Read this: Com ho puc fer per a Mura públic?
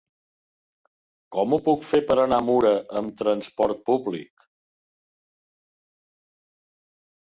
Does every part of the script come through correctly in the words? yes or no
no